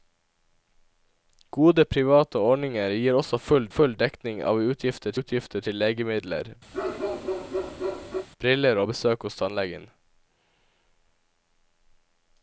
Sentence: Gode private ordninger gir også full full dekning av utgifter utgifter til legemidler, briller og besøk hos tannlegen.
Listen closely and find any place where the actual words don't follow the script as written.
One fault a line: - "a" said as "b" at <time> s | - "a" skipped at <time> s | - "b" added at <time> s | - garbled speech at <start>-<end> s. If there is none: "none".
none